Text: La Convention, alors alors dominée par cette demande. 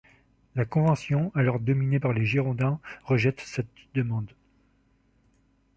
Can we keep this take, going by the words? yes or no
no